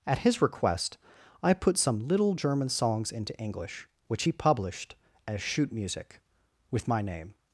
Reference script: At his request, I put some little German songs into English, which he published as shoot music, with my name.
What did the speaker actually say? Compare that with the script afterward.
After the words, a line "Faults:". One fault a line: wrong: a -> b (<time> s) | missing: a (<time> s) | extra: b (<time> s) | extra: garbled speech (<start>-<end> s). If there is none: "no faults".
At his request, I put some little German songs into English, which he published as shoot music, with my name.
Faults:
no faults